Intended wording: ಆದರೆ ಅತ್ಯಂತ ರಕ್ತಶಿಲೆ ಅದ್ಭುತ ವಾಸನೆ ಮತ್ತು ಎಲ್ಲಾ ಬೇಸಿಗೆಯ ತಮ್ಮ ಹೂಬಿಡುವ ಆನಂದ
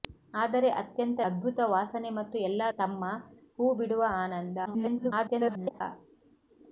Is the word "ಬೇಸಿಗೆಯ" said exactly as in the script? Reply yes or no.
no